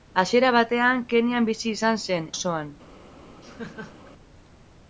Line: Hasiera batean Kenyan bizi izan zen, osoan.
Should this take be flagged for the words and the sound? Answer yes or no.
yes